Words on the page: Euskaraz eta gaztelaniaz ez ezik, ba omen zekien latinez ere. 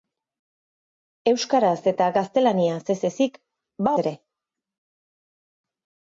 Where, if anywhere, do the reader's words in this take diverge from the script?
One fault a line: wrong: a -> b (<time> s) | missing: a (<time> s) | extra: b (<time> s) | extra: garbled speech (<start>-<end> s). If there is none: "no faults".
missing: omen zekien latinez (3.9 s)